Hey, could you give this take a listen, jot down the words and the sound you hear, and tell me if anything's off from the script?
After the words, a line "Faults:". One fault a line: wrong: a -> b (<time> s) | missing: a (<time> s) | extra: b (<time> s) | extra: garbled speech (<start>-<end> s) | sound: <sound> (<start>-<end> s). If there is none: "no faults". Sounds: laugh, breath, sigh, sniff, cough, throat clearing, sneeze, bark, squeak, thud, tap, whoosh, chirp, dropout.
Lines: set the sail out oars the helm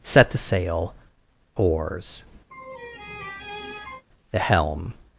set the sail oars the helm
Faults:
missing: out (0.9 s)
sound: laugh (2.5-4.0 s)